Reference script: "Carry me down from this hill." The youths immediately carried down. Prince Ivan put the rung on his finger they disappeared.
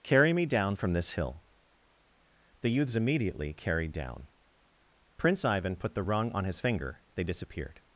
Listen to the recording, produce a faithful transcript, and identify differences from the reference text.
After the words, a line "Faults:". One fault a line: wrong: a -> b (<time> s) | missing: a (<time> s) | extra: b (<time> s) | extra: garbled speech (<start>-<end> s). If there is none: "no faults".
"Carry me down from this hill." The youths immediately carried down. Prince Ivan put the rung on his finger they disappeared.
Faults:
no faults